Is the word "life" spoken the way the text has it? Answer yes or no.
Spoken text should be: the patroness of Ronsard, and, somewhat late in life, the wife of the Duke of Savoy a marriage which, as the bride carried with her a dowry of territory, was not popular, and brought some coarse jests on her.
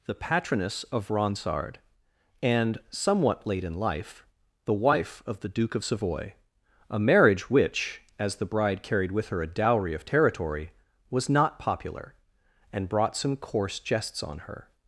yes